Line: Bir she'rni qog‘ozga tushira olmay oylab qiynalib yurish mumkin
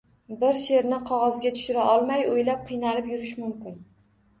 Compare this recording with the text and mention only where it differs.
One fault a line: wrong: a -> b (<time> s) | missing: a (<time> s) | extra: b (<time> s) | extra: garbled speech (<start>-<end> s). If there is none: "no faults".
no faults